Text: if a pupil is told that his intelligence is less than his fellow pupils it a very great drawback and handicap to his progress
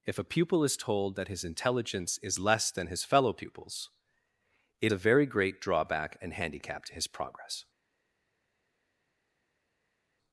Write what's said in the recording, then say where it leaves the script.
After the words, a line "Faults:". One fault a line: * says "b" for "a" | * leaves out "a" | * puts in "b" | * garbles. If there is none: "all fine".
if a pupil is told that his intelligence is less than his fellow pupils it a very great drawback and handicap to his progress
Faults:
all fine